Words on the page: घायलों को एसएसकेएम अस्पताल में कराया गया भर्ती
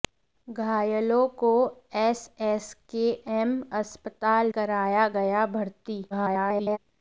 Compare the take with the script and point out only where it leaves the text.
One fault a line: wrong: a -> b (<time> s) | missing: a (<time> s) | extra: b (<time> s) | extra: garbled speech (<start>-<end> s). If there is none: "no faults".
missing: में (4.5 s)
extra: garbled speech (6.1-6.8 s)